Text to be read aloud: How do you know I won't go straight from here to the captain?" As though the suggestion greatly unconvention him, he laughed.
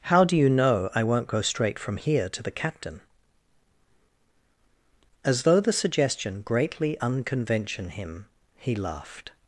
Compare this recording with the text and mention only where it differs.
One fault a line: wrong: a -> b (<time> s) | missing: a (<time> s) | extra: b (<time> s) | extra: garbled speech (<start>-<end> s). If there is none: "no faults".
no faults